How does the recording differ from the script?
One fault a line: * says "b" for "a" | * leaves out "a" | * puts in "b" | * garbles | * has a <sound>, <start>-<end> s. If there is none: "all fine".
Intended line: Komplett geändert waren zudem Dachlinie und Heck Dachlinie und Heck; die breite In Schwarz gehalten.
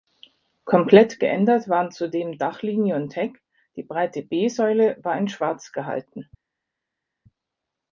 * says "die breite B Säule war" for "Dachlinie und Heck die breite"